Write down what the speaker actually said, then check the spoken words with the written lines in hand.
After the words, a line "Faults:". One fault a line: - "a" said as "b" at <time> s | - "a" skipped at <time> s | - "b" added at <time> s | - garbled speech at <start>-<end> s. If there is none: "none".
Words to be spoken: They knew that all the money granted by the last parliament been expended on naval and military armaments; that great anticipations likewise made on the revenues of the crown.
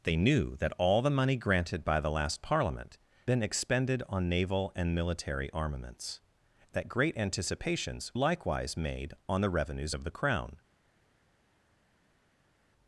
They knew that all the money granted by the last parliament been expended on naval and military armaments; that great anticipations likewise made on the revenues of the crown.
Faults:
none